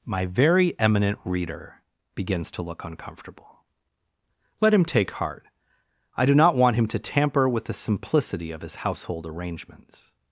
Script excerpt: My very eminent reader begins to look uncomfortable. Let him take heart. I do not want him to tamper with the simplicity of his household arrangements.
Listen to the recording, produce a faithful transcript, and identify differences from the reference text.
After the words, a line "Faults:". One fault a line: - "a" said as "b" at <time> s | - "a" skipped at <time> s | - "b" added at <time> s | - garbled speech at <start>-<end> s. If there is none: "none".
My very eminent reader begins to look uncomfortable. Let him take heart. I do not want him to tamper with the simplicity of his household arrangements.
Faults:
none